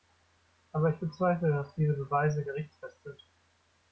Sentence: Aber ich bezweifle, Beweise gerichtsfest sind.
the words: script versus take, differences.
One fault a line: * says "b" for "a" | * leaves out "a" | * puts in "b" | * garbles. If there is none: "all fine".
* puts in "dass diese"